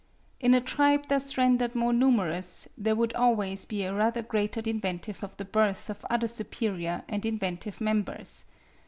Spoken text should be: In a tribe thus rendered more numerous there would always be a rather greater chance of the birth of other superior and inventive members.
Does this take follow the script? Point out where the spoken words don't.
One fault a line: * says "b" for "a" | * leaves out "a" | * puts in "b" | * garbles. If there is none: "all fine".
* says "inventive" for "chance"